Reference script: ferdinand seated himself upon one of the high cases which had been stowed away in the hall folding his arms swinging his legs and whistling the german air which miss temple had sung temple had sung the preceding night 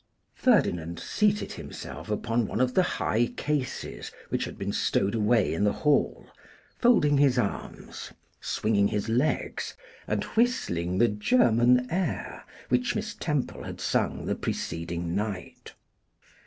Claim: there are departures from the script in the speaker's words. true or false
true